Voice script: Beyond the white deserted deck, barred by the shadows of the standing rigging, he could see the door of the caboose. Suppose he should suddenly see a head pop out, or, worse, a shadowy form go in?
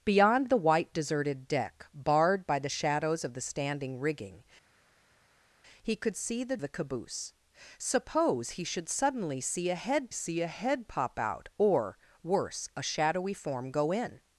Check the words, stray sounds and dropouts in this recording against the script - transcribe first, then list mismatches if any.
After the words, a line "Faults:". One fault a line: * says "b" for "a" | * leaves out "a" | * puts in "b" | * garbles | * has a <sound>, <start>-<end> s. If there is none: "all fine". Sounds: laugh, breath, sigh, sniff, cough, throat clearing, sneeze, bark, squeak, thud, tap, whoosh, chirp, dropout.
Beyond the white deserted deck, barred by the shadows of the standing rigging, he could see the the caboose. Suppose he should suddenly see a head see a head pop out, or, worse, a shadowy form go in?
Faults:
* leaves out "door of"
* puts in "see a head"